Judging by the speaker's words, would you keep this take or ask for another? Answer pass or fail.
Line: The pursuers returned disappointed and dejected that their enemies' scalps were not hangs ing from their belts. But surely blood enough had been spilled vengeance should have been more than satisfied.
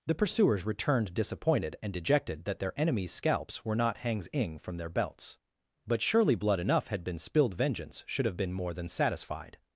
pass